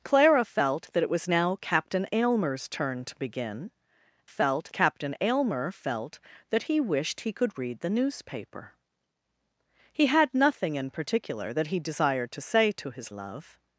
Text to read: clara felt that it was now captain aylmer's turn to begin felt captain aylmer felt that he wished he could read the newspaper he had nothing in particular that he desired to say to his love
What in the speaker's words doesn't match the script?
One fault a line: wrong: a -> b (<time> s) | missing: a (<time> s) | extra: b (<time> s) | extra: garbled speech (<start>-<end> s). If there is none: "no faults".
no faults